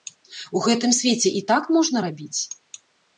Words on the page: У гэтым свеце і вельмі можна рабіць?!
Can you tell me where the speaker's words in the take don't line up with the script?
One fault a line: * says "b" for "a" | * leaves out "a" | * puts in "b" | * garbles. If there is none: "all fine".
* says "так" for "вельмі"